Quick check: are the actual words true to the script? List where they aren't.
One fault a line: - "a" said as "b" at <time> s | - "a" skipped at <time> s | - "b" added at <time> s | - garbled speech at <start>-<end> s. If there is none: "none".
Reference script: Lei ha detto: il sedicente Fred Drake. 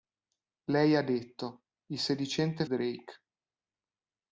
- "Fred" skipped at 2.6 s